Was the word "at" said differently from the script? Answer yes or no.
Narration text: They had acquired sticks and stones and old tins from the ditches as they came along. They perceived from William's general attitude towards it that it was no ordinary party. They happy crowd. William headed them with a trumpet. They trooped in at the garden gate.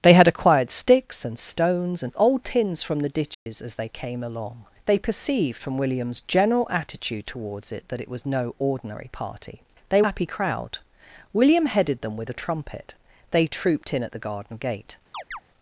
no